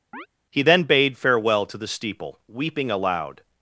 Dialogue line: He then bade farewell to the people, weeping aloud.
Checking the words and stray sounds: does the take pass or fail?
fail